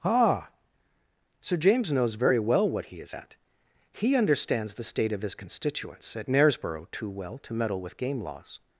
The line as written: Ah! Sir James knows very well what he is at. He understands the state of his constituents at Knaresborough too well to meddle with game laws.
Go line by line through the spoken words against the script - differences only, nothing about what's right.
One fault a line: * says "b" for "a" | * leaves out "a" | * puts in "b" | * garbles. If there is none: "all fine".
all fine